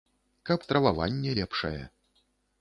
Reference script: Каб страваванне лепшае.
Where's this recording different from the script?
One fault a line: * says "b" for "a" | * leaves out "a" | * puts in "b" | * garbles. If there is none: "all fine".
all fine